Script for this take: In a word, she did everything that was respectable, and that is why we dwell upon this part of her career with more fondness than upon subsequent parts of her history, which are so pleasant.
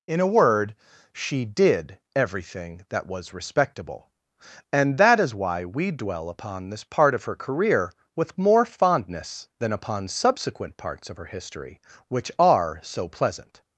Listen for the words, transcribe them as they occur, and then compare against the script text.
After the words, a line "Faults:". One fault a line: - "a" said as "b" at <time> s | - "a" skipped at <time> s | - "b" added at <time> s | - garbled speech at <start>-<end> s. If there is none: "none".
In a word, she did everything that was respectable, and that is why we dwell upon this part of her career with more fondness than upon subsequent parts of her history, which are so pleasant.
Faults:
none